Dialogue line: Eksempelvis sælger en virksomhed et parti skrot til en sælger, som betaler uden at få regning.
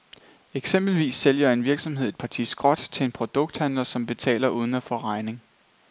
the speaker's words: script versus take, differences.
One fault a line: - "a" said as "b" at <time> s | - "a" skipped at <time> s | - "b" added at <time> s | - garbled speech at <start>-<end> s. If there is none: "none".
- "sælger" said as "produkthandler" at 3.1 s